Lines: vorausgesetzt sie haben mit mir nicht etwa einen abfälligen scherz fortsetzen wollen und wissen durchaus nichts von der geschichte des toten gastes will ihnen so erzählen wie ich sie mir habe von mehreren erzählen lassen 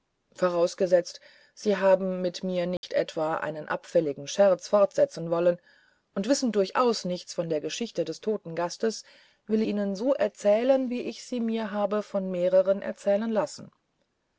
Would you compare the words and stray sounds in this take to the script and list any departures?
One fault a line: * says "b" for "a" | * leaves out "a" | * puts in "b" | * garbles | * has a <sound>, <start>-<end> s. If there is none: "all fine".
* has a dropout, 2.8-2.8 s